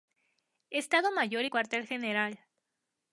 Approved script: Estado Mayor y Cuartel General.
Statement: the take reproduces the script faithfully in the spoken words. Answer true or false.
true